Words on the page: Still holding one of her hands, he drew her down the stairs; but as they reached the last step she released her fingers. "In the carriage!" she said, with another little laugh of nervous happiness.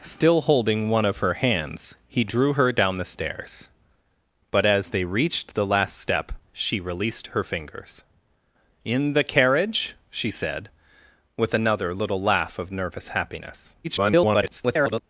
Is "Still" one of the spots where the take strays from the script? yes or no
no